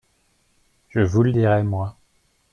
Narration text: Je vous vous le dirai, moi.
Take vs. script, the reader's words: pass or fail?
fail